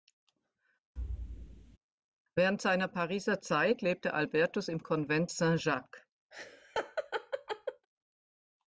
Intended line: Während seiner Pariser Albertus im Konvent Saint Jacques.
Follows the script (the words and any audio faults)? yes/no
no